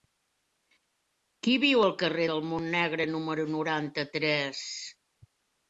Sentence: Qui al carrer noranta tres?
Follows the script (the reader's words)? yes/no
no